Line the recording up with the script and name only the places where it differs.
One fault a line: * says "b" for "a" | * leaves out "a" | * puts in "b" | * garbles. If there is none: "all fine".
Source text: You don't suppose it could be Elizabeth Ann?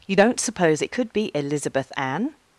all fine